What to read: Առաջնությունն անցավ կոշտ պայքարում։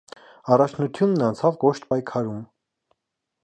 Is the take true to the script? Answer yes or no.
yes